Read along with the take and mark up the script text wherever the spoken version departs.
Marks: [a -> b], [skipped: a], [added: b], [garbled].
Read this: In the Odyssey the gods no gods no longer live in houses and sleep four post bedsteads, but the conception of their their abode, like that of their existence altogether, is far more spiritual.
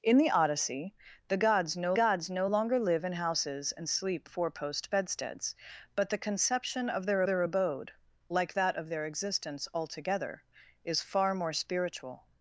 In the Odyssey the gods no gods no longer live in houses and sleep four post bedsteads, but the conception of their their abode, like that of their existence altogether, is far more spiritual.